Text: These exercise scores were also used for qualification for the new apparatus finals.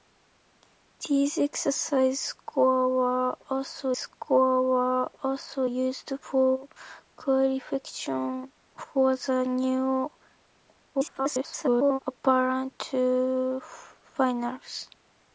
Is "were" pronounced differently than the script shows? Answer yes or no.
no